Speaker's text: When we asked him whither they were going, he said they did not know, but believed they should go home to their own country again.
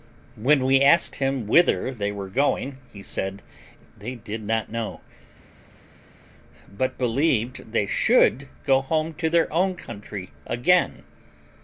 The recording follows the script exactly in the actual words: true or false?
true